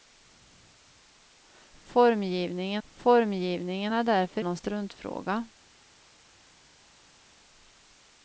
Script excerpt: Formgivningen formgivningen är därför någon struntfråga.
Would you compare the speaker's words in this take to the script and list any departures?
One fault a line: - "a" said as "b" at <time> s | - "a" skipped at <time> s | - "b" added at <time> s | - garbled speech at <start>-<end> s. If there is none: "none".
none